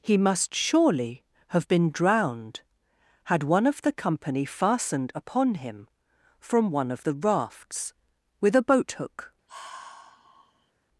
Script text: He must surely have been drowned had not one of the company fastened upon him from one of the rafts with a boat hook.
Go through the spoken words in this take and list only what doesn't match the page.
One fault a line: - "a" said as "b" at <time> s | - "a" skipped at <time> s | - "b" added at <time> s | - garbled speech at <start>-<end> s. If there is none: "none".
- "not" skipped at 3.4 s